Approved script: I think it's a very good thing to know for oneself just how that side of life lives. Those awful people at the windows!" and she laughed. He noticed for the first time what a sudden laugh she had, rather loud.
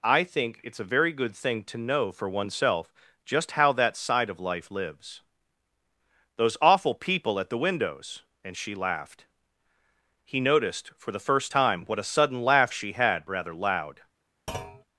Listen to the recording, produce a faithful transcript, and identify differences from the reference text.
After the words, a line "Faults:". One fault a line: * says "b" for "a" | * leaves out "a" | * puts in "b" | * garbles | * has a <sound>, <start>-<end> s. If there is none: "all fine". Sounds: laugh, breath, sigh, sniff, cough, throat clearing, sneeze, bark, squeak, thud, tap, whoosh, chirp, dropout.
I think it's a very good thing to know for oneself just how that side of life lives. Those awful people at the windows!" and she laughed. He noticed for the first time what a sudden laugh she had, rather loud.
Faults:
* has a thud, 14.5-14.8 s